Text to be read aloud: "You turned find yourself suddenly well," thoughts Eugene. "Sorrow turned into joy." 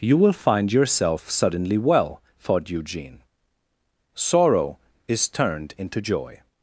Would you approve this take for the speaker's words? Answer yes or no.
no